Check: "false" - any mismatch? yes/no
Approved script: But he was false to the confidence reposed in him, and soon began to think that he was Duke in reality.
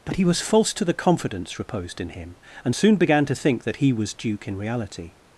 no